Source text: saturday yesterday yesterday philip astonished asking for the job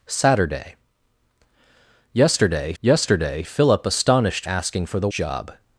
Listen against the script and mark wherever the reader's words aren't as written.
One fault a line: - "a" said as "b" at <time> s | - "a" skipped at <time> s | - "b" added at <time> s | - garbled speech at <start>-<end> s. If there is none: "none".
none